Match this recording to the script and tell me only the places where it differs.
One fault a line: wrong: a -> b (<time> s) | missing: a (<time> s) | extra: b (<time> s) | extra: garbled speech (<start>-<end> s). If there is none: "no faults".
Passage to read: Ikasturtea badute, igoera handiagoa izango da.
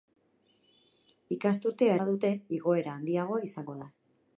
no faults